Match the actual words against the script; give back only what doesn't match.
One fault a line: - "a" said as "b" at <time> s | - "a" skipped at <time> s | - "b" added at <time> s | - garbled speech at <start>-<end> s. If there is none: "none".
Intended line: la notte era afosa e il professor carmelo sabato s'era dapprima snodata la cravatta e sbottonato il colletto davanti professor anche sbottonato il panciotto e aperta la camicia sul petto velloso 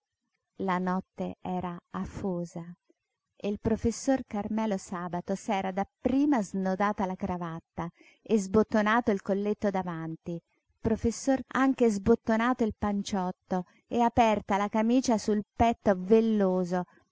none